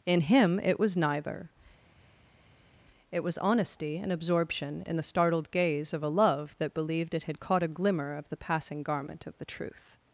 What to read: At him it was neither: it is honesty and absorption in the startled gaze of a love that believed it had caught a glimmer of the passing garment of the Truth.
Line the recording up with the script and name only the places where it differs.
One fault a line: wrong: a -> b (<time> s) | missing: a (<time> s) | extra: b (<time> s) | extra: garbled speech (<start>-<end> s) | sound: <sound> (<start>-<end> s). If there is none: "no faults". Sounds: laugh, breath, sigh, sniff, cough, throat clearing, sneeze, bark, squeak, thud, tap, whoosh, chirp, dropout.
wrong: At -> In (0.1 s)
wrong: is -> was (3.2 s)